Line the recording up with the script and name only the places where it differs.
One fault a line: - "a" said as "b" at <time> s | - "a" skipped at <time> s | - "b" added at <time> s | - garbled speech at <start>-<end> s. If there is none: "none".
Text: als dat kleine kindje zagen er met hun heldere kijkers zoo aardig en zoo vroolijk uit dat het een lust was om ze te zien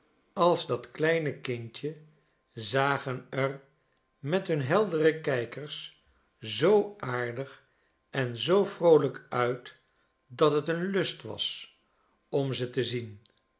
none